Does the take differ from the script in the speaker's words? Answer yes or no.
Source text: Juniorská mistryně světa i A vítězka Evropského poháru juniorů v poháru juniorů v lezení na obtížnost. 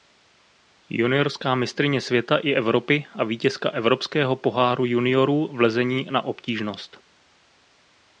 yes